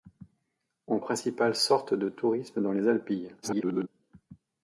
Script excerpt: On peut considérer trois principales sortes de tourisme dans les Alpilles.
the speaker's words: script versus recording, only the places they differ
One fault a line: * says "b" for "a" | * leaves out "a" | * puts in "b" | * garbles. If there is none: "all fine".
* leaves out "peut considérer trois"
* garbles